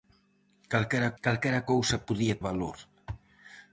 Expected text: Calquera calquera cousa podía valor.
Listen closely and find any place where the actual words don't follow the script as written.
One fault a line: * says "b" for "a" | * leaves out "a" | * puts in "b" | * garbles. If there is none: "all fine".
all fine